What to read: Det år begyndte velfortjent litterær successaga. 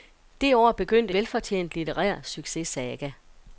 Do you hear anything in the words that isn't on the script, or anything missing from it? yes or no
no